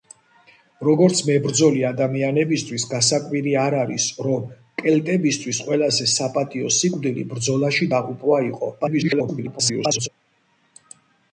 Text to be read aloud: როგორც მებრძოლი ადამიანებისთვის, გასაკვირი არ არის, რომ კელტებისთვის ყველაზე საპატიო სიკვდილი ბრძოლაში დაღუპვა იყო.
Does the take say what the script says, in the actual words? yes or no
no